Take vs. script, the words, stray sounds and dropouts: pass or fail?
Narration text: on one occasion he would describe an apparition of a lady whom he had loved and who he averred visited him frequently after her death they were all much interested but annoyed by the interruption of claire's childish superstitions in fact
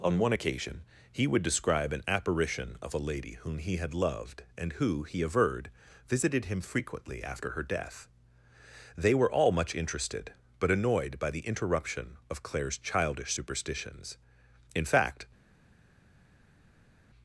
pass